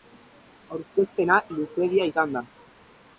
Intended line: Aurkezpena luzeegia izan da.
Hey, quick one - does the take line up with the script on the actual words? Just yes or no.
yes